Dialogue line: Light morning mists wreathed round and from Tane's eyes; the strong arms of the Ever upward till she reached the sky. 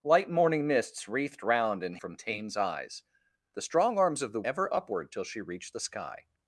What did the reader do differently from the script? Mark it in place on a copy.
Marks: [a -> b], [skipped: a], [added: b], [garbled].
Light morning mists wreathed round and from Tane's eyes; the strong arms of the Ever upward till she reached the sky.